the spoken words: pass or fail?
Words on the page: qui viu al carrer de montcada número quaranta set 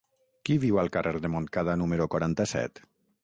pass